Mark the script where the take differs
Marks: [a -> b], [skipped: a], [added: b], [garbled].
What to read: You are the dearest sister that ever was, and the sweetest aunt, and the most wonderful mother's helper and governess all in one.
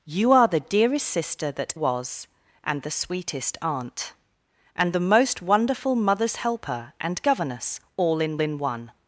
You are the dearest sister that [skipped: ever] was, and the sweetest aunt, and the most wonderful mother's helper and governess all in [added: in] one.